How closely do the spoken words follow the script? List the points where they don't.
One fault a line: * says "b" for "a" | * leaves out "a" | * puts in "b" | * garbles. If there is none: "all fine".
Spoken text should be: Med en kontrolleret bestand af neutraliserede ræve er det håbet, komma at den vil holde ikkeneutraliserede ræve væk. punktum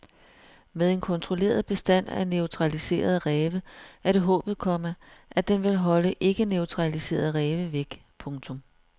all fine